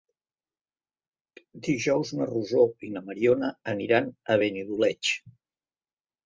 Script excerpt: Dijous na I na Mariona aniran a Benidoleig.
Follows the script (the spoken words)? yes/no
no